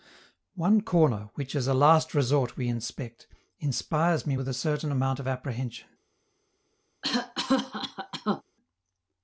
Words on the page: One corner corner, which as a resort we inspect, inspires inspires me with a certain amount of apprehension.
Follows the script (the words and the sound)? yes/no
no